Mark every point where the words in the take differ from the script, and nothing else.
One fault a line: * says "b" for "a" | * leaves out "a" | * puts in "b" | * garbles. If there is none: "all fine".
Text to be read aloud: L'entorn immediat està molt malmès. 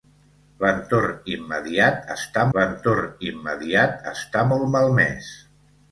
* puts in "l'entorn immediat està"